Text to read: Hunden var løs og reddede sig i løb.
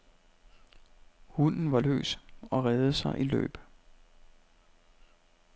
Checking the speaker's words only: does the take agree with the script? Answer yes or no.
yes